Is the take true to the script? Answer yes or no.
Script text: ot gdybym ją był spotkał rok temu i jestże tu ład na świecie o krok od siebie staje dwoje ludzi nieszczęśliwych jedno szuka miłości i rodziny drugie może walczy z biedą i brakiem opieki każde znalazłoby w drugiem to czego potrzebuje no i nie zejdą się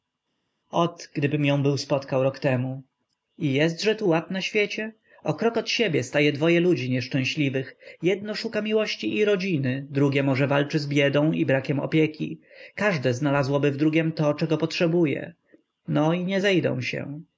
yes